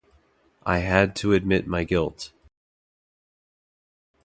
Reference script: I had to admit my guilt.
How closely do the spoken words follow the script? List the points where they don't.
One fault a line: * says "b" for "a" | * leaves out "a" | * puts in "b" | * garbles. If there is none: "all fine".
all fine